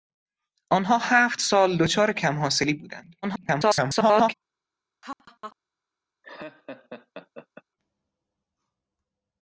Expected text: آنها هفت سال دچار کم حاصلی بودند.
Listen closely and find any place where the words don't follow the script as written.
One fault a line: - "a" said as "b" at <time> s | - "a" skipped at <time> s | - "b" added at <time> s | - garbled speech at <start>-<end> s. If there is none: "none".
- garbled speech at 3.2-4.3 s